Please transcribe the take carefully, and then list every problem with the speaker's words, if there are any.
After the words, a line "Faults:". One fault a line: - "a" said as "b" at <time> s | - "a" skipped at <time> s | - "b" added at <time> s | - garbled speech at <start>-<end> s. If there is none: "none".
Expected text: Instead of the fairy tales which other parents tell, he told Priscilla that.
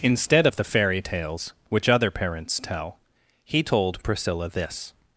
Instead of the fairy tales which other parents tell, he told Priscilla this.
Faults:
- "that" said as "this" at 4.5 s